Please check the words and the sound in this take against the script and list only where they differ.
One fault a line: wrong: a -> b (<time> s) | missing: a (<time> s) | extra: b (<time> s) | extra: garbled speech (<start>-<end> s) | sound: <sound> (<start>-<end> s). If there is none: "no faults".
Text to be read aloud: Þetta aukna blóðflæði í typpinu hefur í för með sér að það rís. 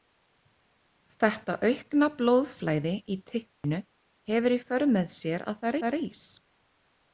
sound: dropout (3.5-3.6 s)
extra: það (5.8 s)